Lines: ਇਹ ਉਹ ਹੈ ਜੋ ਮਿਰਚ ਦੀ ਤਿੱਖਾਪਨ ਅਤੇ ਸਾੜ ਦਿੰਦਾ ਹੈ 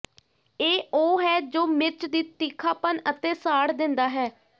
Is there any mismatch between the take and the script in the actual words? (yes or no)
no